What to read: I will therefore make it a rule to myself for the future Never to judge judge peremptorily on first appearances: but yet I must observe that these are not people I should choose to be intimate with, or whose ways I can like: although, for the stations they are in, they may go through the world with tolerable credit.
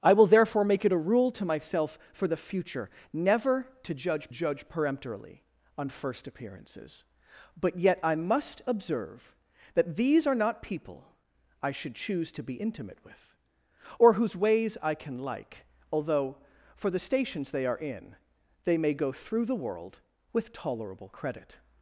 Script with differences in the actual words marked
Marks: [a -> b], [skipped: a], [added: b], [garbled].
I will therefore make it a rule to myself for the future Never to judge judge peremptorily on first appearances: but yet I must observe that these are not people I should choose to be intimate with, or whose ways I can like: although, for the stations they are in, they may go through the world with tolerable credit.